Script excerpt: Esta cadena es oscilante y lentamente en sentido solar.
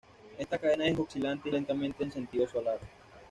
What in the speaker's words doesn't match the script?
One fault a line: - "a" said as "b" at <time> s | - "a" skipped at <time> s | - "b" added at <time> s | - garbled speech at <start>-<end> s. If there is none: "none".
none